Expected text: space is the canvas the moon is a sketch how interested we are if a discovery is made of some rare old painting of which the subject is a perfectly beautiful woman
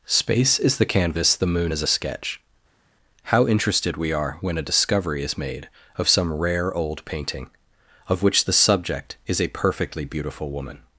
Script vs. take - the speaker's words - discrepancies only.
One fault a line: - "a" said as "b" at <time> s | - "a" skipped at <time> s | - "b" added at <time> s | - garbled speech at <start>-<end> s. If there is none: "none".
- "if" said as "when" at 4.4 s